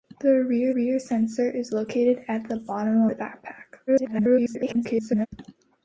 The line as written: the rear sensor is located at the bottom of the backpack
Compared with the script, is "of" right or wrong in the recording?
wrong